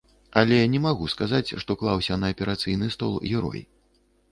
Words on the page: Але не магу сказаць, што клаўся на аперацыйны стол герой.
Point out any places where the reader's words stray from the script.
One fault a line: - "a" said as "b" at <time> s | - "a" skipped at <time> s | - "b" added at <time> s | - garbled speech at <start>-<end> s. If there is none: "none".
none